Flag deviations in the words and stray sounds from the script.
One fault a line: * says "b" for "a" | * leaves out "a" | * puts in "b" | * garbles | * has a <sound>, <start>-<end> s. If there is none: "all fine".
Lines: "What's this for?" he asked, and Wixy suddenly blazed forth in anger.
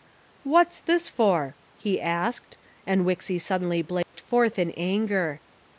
* has a dropout, 4.0-4.1 s